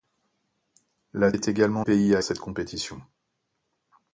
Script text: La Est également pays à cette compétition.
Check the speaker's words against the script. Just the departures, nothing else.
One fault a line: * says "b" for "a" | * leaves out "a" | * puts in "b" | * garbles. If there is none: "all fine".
all fine